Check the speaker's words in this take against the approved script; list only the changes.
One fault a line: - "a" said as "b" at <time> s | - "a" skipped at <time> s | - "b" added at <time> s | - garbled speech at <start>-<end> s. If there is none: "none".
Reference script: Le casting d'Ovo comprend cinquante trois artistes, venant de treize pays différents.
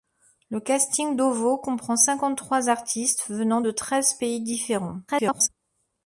- garbled speech at 5.1-5.5 s